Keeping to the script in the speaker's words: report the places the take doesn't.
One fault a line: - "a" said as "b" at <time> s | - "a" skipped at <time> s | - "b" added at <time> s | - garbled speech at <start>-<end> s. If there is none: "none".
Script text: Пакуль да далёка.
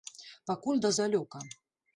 none